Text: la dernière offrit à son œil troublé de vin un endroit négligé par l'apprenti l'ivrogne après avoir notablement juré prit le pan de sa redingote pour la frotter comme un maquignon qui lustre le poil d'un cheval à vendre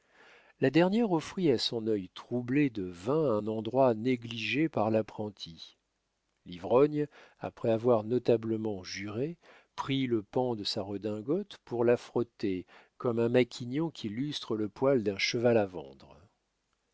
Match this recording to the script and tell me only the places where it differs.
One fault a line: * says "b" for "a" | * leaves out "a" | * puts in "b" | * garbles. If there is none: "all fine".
all fine